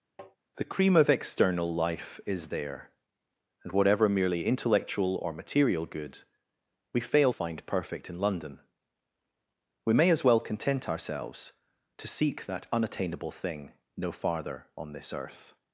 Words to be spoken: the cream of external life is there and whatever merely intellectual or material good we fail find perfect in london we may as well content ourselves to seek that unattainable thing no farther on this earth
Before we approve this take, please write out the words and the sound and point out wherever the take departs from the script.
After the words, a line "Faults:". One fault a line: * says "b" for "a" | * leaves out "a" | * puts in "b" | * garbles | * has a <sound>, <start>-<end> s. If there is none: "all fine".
the cream of external life is there and whatever merely intellectual or material good we fail find perfect in london we may as well content ourselves to seek that unattainable thing no farther on this earth
Faults:
* has a tap, 0.2-0.4 s